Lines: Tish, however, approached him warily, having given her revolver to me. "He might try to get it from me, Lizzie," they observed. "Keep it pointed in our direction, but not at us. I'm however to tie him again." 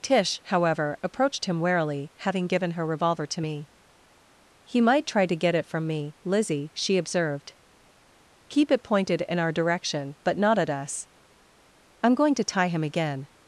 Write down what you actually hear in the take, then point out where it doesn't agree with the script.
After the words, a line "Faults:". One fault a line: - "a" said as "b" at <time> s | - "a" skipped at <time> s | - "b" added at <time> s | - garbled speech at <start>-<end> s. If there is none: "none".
Tish, however, approached him warily, having given her revolver to me. "He might try to get it from me, Lizzie," she observed. "Keep it pointed in our direction, but not at us. I'm going to tie him again."
Faults:
- "they" said as "she" at 6.7 s
- "however" said as "going" at 12.1 s